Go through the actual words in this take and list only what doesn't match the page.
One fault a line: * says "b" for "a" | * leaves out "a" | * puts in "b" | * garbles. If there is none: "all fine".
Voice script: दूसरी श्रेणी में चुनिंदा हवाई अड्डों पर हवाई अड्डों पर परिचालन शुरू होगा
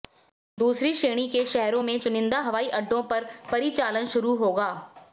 * puts in "के शहरों"
* leaves out "हवाई अड्डों पर"